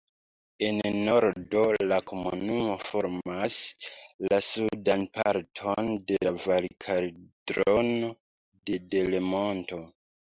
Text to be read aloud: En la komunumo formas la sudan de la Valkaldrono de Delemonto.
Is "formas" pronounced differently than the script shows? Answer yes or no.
no